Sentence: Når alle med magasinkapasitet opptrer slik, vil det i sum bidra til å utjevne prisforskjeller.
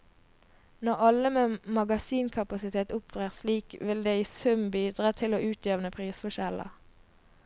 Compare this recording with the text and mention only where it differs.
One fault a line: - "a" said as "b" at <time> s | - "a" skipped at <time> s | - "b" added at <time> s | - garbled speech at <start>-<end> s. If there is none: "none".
none